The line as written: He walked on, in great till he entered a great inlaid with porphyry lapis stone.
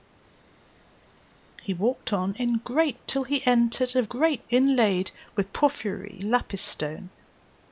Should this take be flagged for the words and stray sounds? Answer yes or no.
no